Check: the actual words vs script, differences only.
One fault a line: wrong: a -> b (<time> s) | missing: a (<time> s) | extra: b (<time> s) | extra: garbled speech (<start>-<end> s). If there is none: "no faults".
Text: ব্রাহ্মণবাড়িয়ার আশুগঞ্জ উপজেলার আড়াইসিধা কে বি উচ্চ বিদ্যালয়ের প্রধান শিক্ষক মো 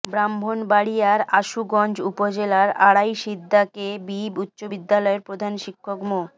no faults